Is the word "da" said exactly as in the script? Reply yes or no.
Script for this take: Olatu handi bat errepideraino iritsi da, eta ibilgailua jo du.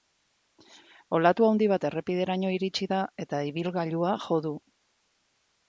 yes